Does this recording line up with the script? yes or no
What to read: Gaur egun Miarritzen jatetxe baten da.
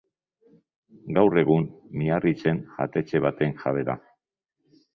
no